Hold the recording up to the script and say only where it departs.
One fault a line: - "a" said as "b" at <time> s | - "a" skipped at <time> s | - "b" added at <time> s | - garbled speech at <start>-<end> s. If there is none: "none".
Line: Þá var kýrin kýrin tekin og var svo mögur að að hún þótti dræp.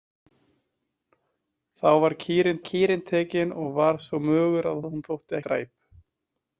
none